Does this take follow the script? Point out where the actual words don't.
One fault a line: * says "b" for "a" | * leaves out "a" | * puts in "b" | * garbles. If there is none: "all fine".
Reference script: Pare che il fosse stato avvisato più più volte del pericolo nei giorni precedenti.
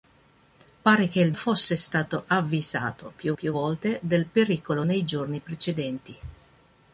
all fine